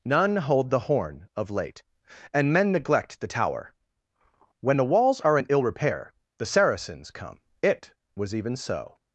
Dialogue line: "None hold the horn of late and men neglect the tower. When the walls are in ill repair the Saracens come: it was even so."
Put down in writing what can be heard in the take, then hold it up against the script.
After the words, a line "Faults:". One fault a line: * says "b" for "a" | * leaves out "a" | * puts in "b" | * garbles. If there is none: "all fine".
"None hold the horn of late and men neglect the tower. When the walls are in ill repair the Saracens come: it was even so."
Faults:
all fine